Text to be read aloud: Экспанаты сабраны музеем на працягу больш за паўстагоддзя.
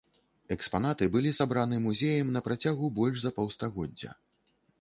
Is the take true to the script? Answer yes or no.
no